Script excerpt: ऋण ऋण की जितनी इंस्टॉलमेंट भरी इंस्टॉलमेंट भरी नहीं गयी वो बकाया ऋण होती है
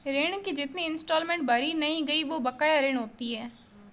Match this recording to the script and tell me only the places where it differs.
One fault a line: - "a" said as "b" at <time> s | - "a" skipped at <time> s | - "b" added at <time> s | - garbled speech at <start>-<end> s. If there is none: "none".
- "ऋण" skipped at 0.4 s
- "इंस्टॉलमेंट भरी" skipped at 1.7 s